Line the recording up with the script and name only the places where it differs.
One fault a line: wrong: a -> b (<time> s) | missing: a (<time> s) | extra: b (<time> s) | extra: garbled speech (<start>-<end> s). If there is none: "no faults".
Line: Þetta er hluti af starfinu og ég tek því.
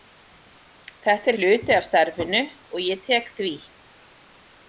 no faults